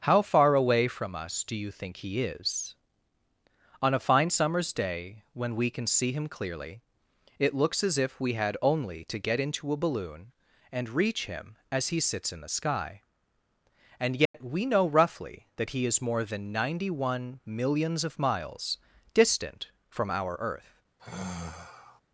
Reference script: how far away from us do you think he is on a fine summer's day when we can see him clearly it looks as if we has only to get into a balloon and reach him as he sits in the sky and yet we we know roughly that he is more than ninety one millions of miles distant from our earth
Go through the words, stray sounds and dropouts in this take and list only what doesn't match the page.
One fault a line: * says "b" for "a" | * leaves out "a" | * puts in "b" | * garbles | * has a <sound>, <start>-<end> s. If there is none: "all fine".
* says "had" for "has"
* has a dropout, 14.3-14.3 s
* leaves out "we"
* has a sigh, 21.0-22.0 s